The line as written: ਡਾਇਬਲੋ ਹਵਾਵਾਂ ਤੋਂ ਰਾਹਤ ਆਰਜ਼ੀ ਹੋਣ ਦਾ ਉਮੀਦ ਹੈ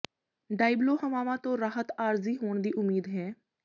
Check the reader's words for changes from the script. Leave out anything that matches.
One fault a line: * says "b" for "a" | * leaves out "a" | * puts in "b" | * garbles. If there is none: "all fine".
* says "ਦੀ" for "ਦਾ"